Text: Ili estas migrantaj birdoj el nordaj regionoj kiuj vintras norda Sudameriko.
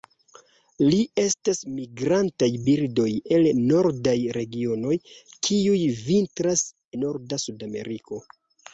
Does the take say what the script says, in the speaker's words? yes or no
yes